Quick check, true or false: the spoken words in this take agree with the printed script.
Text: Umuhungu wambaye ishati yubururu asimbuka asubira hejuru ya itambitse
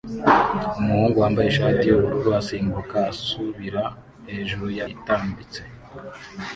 true